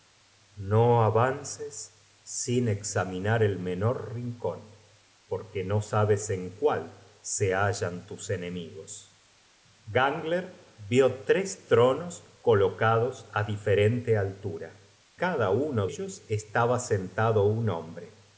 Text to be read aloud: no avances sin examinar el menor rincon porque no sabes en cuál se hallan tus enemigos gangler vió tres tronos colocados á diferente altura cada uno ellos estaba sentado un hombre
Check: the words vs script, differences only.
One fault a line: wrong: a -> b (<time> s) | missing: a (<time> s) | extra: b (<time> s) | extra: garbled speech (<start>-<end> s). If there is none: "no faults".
no faults